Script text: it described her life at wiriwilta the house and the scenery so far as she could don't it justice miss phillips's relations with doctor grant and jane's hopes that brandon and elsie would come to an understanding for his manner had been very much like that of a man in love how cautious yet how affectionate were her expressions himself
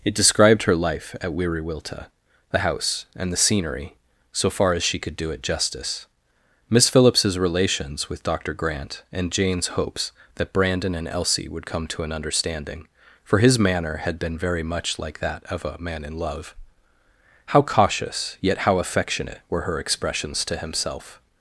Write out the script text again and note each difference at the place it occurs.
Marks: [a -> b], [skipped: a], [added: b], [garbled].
it described her life at wiriwilta the house and the scenery so far as she could [don't -> do] it justice miss phillips's relations with doctor grant and jane's hopes that brandon and elsie would come to an understanding for his manner had been very much like that of a man in love how cautious yet how affectionate were her expressions [added: to] himself